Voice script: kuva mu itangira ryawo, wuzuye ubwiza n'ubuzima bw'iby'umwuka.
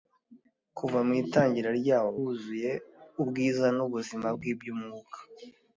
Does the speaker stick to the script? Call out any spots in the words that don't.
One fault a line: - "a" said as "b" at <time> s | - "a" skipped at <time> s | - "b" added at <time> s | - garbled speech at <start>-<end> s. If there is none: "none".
none